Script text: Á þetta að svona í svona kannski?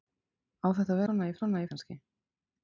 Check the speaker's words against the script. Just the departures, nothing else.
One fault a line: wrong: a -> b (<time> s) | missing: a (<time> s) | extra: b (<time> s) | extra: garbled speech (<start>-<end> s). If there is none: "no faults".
no faults